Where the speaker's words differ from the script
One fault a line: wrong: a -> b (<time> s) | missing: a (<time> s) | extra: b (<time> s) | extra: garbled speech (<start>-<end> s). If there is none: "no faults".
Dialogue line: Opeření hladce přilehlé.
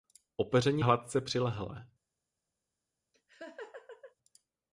no faults